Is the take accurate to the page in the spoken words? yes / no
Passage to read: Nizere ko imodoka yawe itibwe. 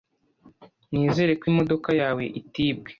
yes